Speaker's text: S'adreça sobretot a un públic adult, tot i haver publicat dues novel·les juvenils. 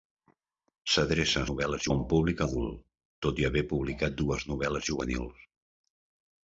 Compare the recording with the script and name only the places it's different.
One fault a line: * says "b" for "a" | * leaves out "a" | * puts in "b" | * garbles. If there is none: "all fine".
* says "novel·les" for "sobretot"